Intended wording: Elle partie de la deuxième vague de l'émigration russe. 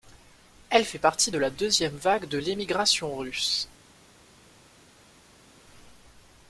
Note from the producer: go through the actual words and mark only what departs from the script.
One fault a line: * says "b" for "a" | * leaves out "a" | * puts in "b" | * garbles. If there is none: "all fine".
* puts in "fait"